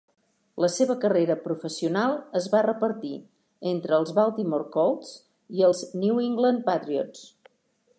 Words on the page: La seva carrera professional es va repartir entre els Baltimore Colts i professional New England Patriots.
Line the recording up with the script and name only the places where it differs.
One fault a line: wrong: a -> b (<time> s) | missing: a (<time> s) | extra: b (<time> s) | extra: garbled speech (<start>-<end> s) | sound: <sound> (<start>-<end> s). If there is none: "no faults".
wrong: professional -> els (5.7 s)